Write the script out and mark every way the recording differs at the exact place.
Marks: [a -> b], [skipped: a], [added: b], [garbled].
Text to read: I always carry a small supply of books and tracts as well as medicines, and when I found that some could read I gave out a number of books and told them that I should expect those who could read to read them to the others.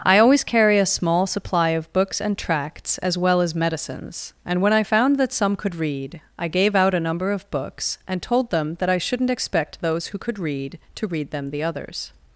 I always carry a small supply of books and tracts as well as medicines, and when I found that some could read I gave out a number of books and told them that I [should -> shouldn't] expect those who could read to read them [skipped: to] the others.